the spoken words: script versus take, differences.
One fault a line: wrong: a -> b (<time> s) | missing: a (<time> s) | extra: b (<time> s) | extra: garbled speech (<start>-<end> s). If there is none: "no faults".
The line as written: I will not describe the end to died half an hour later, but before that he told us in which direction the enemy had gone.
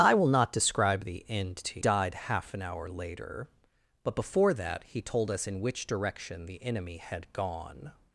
no faults